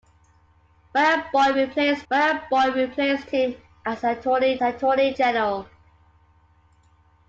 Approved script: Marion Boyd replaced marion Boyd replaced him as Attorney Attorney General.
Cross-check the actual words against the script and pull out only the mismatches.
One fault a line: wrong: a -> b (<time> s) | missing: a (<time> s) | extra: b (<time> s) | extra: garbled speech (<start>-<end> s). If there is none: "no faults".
no faults